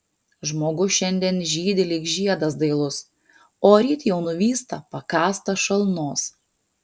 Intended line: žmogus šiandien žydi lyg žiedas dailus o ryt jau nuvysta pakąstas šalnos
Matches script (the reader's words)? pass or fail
pass